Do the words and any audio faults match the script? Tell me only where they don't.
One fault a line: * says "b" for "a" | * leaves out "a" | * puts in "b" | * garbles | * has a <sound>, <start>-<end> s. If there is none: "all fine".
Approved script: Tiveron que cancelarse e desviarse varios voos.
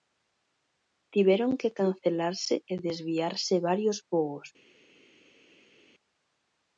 all fine